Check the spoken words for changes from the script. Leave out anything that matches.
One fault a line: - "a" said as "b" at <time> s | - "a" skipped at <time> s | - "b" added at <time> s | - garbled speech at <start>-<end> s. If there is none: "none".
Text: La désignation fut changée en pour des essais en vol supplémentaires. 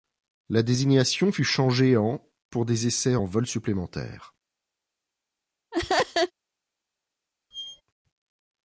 none